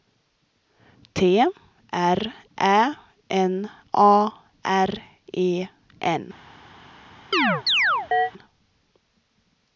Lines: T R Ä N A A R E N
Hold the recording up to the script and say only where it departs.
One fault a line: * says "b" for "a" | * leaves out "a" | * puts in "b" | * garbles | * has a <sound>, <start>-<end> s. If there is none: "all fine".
* leaves out "A"
* has a chirp, 7.3-8.3 s